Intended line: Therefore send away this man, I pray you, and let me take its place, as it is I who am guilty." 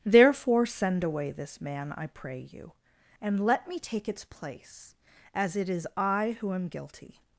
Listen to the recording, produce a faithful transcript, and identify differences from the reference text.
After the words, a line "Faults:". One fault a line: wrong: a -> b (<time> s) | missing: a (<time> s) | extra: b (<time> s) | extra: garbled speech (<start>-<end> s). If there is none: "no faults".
Therefore send away this man, I pray you, and let me take its place, as it is I who am guilty."
Faults:
no faults